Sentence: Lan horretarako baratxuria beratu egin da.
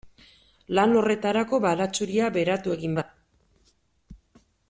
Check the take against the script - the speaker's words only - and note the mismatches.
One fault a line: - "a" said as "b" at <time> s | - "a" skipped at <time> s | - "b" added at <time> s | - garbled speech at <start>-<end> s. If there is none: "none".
none